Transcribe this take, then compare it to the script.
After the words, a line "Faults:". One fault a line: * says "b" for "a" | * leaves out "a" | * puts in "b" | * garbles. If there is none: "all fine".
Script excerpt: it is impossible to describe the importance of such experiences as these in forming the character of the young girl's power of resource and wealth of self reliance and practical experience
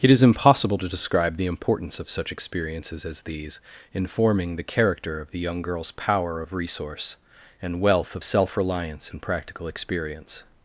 it is impossible to describe the importance of such experiences as these in forming the character of the young girl's power of resource and wealth of self reliance and practical experience
Faults:
all fine